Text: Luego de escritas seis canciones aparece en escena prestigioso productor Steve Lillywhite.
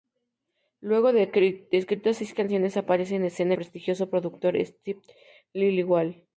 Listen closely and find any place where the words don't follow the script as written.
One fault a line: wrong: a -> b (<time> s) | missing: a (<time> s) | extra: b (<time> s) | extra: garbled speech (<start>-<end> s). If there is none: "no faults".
no faults